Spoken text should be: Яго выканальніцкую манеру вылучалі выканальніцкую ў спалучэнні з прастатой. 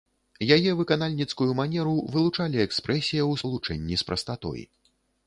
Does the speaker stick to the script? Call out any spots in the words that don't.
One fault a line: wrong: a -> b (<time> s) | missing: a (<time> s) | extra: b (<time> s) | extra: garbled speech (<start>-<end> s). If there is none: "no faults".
wrong: Яго -> Яе (0.6 s)
wrong: выканальніцкую -> экспрэсія (2.7 s)